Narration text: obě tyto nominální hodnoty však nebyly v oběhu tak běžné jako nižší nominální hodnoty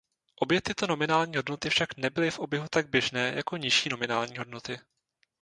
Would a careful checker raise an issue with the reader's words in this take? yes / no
no